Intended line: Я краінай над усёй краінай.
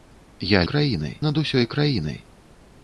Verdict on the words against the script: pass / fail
pass